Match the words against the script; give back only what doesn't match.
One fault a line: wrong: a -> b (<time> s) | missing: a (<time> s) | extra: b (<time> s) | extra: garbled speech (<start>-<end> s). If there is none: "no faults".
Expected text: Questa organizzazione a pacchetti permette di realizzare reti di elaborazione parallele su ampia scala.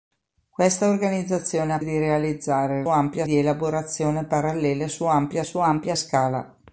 missing: pacchetti permette (1.8 s)
wrong: reti -> ampia (2.9 s)
extra: su ampia (5.4 s)